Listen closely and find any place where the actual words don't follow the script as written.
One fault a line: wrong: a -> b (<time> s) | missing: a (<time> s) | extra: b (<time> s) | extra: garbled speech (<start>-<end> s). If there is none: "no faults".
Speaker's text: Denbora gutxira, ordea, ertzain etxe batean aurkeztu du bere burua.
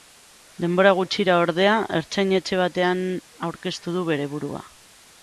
no faults